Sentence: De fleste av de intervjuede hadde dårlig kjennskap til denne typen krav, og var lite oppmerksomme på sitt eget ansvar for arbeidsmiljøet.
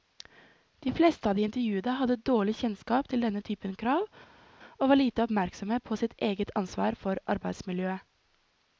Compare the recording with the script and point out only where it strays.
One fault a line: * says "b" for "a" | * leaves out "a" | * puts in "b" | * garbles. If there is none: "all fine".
all fine